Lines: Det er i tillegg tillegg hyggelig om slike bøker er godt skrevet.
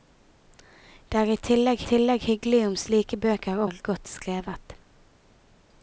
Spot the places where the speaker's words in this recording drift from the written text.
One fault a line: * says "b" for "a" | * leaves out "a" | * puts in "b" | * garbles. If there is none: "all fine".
all fine